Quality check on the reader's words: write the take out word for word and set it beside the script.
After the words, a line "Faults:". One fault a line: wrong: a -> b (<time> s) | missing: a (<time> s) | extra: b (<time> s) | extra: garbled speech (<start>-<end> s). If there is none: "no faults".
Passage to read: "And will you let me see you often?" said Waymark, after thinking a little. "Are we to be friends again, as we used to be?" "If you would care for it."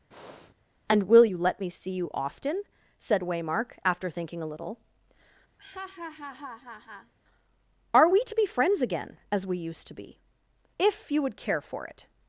"And will you let me see you often?" said Waymark, after thinking a little. "Are we to be friends again, as we used to be?" "If you would care for it."
Faults:
no faults